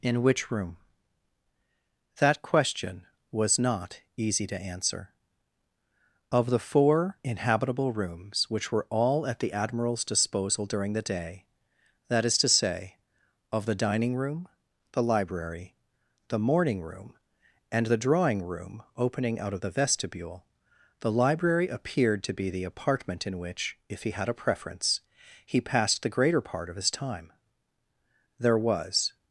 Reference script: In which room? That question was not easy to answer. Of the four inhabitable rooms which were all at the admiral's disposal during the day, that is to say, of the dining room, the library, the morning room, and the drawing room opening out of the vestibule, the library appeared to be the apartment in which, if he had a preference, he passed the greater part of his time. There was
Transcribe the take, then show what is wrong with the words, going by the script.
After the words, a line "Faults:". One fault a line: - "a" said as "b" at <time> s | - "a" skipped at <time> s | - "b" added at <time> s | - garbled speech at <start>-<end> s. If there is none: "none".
In which room? That question was not easy to answer. Of the four inhabitable rooms which were all at the admiral's disposal during the day, that is to say, of the dining room, the library, the morning room, and the drawing room opening out of the vestibule, the library appeared to be the apartment in which, if he had a preference, he passed the greater part of his time. There was
Faults:
none